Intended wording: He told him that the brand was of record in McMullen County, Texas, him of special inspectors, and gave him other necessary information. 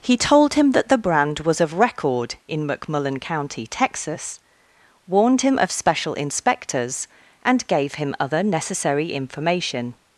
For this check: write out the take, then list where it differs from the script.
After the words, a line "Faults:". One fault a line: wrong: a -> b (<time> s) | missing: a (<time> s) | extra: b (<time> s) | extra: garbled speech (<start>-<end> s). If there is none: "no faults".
He told him that the brand was of record in McMullen County, Texas, warned him of special inspectors, and gave him other necessary information.
Faults:
extra: warned (5.1 s)